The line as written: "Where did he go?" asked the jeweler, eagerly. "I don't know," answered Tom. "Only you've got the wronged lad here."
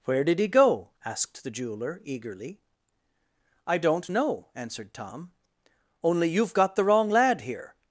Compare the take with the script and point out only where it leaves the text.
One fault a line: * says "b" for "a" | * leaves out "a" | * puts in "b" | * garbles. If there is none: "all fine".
* says "wrong" for "wronged"